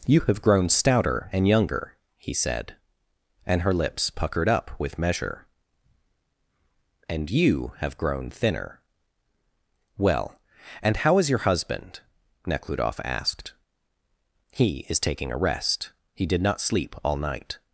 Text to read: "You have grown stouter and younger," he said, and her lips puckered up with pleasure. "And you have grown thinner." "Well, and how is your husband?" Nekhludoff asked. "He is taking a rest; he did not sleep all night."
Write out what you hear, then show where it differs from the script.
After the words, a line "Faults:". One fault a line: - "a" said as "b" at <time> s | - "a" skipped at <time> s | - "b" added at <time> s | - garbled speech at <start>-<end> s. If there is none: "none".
"You have grown stouter and younger," he said, and her lips puckered up with measure. "And you have grown thinner." "Well, and how is your husband?" Nekhludoff asked. "He is taking a rest; he did not sleep all night."
Faults:
- "pleasure" said as "measure" at 5.0 s